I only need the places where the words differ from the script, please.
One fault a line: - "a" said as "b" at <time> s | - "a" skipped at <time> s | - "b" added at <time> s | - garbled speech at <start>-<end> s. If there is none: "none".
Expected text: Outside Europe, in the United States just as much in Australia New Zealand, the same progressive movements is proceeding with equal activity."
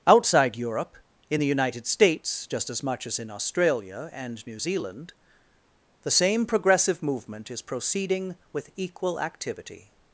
- "as" added at 3.1 s
- "and" added at 4.1 s
- "movements" said as "movement" at 7.0 s